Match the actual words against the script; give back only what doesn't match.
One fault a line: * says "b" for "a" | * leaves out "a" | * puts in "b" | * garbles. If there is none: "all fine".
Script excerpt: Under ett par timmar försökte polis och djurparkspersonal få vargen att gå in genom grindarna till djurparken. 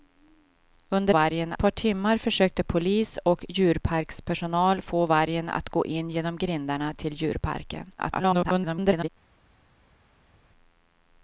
* says "vargen" for "ett"
* garbles